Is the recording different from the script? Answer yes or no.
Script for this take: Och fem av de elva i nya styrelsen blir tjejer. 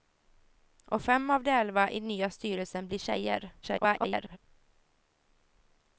yes